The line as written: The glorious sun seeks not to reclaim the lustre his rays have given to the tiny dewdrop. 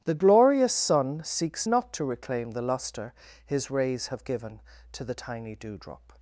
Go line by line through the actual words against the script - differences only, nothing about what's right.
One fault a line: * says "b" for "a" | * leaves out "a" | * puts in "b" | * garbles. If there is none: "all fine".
all fine